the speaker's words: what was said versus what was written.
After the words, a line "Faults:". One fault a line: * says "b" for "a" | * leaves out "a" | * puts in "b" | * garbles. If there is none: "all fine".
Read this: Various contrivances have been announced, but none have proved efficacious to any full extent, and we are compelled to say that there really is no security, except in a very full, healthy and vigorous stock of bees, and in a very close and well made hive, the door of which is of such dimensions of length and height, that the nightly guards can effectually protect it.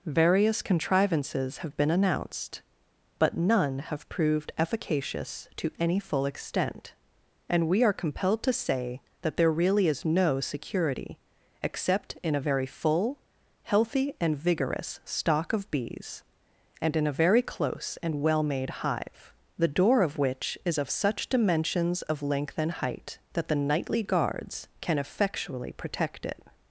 Various contrivances have been announced, but none have proved efficacious to any full extent, and we are compelled to say that there really is no security, except in a very full, healthy and vigorous stock of bees, and in a very close and well made hive, the door of which is of such dimensions of length and height, that the nightly guards can effectually protect it.
Faults:
all fine